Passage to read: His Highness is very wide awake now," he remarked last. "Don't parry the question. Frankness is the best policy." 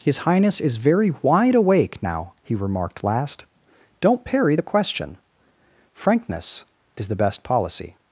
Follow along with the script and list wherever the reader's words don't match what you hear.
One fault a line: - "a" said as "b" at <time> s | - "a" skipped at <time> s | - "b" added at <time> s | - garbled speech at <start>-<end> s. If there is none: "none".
none